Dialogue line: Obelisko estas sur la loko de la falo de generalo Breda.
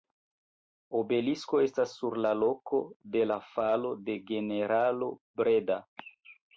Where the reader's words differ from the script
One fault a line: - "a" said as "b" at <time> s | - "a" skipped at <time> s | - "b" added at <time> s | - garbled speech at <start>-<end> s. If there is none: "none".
none